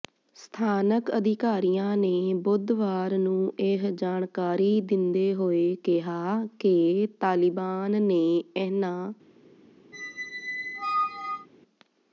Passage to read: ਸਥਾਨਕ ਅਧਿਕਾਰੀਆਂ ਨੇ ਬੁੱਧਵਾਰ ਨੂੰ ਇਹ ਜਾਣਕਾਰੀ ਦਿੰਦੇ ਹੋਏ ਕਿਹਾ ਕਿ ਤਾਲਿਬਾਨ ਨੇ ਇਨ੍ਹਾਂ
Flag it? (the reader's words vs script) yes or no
no